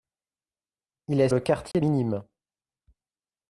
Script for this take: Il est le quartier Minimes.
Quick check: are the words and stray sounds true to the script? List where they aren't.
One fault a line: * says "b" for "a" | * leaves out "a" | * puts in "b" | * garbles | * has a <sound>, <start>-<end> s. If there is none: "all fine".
* has a dropout, 1.7-1.7 s